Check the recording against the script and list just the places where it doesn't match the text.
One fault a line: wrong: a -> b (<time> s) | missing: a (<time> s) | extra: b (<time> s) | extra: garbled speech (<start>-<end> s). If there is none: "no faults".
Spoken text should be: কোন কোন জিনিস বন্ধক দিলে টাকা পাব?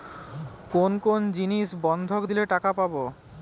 no faults